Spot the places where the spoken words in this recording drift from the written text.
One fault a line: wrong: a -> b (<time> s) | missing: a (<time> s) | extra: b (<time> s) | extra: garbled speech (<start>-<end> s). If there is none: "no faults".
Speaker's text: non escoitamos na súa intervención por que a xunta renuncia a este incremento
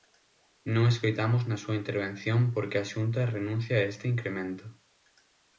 no faults